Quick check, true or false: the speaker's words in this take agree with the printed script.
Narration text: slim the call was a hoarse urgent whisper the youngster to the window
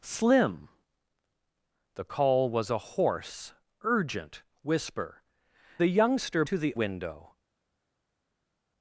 true